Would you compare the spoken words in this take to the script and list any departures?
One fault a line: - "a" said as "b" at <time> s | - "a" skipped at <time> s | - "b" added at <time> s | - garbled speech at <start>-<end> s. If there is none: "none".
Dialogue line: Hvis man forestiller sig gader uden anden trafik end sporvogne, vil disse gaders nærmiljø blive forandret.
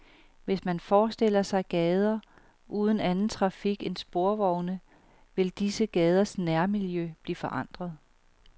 none